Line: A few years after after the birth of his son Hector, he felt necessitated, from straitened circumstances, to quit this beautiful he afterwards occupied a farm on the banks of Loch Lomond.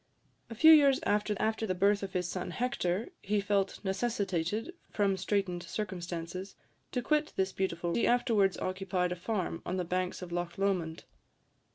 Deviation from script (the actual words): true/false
false